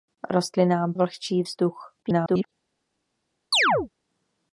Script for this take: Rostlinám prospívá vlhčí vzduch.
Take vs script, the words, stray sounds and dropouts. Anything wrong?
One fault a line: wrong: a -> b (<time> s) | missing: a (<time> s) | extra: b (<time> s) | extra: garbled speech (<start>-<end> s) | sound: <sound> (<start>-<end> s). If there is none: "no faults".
missing: prospívá (0.9 s)
extra: garbled speech (2.0-2.5 s)
sound: chirp (3.5-3.9 s)